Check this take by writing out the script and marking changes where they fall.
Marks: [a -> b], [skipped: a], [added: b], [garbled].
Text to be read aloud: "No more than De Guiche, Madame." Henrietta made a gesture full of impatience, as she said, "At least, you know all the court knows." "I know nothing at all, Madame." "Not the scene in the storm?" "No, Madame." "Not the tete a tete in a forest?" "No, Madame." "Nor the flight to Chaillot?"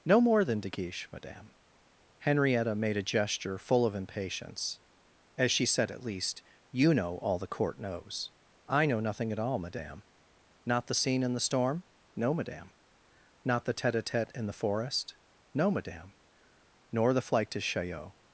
"No more than De Guiche, Madame." Henrietta made a gesture full of impatience, as she said, "At least, you know all the court knows." "I know nothing at all, Madame." "Not the scene in the storm?" "No, Madame." "Not the tete a tete in [a -> the] forest?" "No, Madame." "Nor the flight to Chaillot?"